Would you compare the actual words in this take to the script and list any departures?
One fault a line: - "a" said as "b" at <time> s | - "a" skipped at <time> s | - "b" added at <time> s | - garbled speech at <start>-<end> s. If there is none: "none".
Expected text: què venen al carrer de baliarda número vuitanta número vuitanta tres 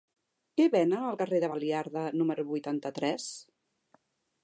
- "número vuitanta" skipped at 3.0 s